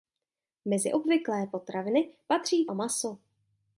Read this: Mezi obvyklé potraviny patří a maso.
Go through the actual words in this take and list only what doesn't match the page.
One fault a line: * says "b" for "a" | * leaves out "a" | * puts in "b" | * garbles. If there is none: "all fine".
all fine